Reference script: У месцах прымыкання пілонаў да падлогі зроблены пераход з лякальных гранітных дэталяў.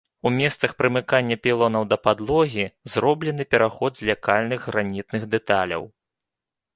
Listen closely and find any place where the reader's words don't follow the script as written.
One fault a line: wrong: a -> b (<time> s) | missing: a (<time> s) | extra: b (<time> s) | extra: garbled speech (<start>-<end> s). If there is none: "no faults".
no faults